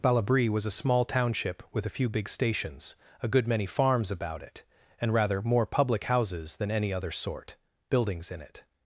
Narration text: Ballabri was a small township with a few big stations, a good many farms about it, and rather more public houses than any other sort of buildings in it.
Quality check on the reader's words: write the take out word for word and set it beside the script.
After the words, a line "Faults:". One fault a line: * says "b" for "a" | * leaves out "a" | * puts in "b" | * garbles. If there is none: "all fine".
Ballabri was a small township with a few big stations, a good many farms about it, and rather more public houses than any other sort buildings in it.
Faults:
* leaves out "of"